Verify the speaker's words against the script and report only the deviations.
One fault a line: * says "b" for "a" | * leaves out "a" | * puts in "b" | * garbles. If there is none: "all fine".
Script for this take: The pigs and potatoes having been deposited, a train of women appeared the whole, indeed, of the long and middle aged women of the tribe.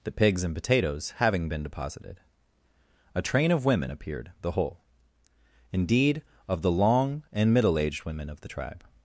all fine